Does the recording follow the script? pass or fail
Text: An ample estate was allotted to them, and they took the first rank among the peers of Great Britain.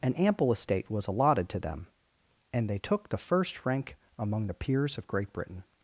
pass